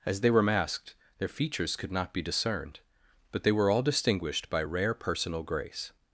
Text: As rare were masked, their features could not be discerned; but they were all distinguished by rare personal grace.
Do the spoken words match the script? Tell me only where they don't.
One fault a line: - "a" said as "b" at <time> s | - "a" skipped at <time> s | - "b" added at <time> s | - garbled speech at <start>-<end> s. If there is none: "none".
- "rare" said as "they" at 0.2 s